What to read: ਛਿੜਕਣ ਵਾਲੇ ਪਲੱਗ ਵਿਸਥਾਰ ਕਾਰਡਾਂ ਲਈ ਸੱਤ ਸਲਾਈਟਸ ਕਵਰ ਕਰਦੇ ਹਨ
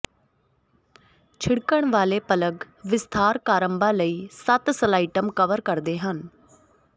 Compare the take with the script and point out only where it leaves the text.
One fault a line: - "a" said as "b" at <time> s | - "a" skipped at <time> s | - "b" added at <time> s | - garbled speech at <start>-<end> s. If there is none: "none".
none